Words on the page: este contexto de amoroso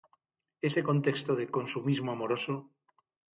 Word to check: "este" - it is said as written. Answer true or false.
false